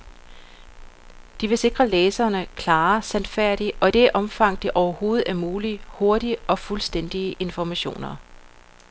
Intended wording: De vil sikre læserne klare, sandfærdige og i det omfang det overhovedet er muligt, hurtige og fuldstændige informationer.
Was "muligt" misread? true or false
false